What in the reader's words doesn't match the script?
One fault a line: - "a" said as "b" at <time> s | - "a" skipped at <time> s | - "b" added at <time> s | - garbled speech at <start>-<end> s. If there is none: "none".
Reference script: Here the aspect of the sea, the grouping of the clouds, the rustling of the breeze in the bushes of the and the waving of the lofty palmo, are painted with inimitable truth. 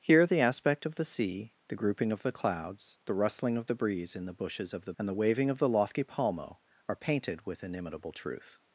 none